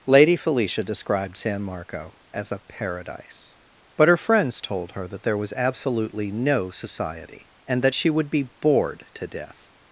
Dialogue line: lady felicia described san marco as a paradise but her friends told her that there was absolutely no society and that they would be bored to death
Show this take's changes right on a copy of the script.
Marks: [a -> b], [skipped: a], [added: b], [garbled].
lady felicia described san marco as a paradise but her friends told her that there was absolutely no society and that [they -> she] would be bored to death